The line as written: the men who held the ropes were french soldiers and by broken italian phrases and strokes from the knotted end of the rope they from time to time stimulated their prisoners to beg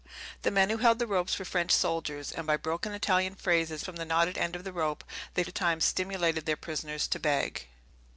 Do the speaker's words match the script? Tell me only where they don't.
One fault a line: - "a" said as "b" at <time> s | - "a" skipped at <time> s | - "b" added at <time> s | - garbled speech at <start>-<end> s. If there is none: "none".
- "and strokes" skipped at 3.8 s
- "from time" skipped at 5.4 s